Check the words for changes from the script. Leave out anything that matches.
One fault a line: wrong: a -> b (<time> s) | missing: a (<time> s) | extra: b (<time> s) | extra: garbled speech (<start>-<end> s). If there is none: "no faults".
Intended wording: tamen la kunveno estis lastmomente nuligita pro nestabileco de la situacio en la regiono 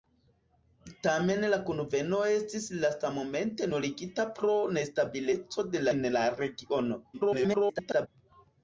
missing: la situacio (5.9 s)
extra: garbled speech (7.1-8.1 s)